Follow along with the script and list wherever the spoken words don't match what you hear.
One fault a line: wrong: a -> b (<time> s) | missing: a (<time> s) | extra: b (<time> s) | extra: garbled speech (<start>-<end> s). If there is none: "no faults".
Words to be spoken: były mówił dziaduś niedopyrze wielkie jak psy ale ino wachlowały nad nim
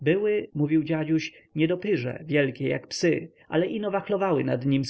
no faults